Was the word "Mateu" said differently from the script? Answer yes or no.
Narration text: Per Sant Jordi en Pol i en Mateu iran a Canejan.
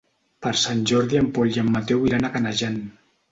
no